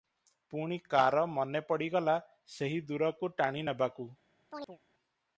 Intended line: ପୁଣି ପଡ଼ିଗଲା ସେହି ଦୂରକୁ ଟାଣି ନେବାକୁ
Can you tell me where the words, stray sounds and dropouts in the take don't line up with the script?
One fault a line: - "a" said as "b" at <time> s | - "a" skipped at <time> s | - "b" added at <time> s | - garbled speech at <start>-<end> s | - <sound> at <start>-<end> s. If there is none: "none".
- "କାର ମନେ" added at 0.9 s
- chirp at 4.5-4.8 s